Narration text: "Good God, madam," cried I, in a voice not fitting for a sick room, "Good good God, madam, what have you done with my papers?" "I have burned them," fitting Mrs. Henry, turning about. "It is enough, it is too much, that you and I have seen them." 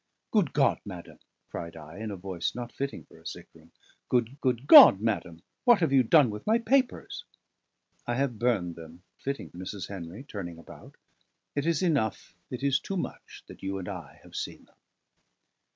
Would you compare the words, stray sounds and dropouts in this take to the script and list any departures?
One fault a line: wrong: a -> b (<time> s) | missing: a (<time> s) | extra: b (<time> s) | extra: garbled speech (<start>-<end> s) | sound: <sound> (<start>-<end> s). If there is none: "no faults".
no faults